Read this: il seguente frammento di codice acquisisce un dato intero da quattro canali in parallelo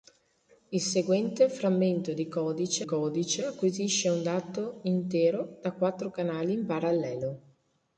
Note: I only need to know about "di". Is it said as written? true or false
true